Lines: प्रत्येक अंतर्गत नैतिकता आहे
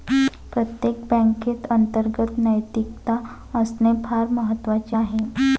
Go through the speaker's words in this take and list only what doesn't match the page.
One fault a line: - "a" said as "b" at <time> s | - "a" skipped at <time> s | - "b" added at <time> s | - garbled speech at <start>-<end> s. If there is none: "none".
- "बँकेत" added at 1.1 s
- "असणे फार महत्वाचे" added at 3.5 s